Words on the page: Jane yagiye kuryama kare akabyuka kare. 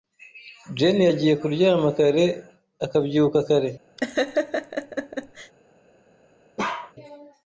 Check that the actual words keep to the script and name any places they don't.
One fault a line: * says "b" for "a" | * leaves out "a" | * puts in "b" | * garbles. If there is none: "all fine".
all fine